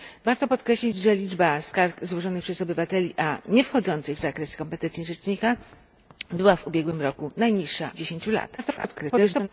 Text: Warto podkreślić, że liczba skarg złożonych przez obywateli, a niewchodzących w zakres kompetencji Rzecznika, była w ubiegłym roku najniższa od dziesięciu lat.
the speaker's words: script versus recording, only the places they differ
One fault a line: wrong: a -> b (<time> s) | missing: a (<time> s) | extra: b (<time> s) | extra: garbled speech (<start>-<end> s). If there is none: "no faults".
missing: od (7.9 s)
extra: garbled speech (8.6-9.5 s)